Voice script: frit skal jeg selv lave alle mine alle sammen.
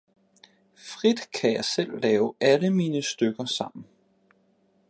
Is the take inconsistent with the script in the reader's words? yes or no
yes